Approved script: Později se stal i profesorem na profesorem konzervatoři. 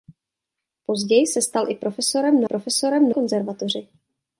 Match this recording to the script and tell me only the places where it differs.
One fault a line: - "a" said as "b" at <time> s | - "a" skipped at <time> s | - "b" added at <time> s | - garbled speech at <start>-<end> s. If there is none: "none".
none